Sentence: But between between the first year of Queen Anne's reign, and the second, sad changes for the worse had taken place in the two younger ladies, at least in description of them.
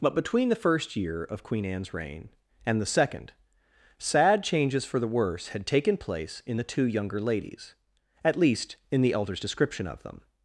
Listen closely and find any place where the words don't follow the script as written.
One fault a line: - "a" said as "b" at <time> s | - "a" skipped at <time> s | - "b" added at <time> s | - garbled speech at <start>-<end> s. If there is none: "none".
- "between" skipped at 0.5 s
- "the elder's" added at 9.0 s